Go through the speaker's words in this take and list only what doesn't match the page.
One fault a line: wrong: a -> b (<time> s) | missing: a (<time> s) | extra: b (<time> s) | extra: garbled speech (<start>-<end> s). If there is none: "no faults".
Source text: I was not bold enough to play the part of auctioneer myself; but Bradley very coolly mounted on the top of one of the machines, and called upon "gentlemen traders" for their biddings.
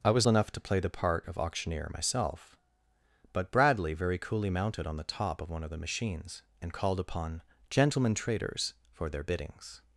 missing: not bold (0.3 s)